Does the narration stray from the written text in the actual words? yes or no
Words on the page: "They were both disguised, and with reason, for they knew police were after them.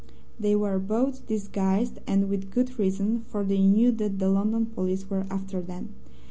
yes